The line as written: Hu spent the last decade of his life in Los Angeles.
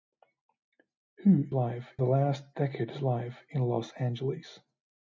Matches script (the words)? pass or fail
fail